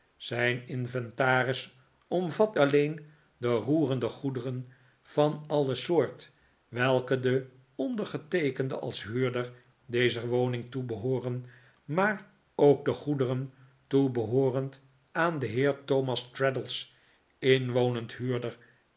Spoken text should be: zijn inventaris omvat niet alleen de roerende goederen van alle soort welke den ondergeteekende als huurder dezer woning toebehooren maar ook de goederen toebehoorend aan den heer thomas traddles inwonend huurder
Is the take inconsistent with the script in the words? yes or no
yes